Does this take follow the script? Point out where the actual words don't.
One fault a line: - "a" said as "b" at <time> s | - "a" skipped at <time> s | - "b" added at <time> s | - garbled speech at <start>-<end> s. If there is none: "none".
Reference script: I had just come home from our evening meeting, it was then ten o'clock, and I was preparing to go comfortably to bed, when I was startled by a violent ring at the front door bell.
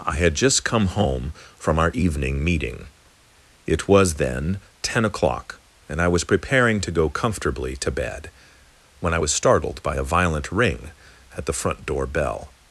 none